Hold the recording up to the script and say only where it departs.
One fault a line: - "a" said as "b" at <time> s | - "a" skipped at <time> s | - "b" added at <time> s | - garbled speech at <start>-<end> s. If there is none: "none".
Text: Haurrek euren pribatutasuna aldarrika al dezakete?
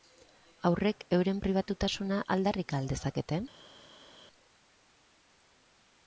none